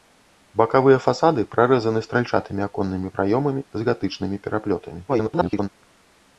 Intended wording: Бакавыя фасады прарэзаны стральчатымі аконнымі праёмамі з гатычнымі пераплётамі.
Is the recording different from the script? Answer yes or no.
yes